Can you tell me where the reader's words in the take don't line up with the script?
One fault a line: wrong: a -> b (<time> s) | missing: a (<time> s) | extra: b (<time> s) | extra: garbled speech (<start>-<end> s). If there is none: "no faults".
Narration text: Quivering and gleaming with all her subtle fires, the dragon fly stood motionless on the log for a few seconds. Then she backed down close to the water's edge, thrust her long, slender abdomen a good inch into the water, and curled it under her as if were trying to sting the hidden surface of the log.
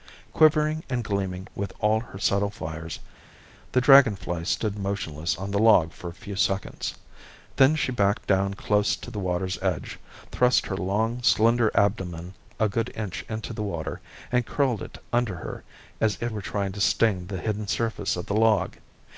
no faults